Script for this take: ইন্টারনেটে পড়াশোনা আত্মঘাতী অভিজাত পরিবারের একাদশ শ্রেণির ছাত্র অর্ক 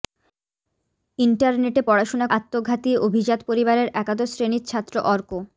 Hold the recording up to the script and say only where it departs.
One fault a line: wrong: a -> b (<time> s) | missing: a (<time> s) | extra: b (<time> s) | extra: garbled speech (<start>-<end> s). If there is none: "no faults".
no faults